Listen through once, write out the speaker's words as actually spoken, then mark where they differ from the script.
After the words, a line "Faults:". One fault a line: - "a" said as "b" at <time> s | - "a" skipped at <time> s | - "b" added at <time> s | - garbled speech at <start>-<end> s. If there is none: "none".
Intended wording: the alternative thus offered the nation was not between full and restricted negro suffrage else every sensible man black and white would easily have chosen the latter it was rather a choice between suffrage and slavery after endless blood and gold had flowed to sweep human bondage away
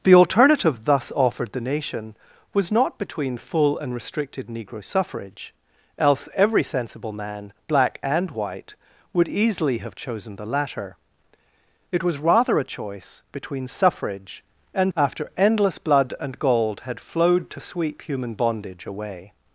the alternative thus offered the nation was not between full and restricted negro suffrage else every sensible man black and white would easily have chosen the latter it was rather a choice between suffrage and after endless blood and gold had flowed to sweep human bondage away
Faults:
- "slavery" skipped at 14.9 s